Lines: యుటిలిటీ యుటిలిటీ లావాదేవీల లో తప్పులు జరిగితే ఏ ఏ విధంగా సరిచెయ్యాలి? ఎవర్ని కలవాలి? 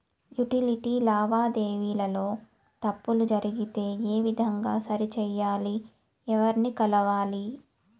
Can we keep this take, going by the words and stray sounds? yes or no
no